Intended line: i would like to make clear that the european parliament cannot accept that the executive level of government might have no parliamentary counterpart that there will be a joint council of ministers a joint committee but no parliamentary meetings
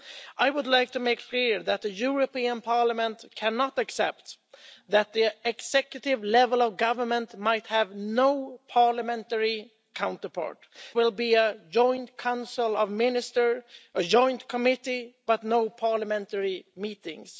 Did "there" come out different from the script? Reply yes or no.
yes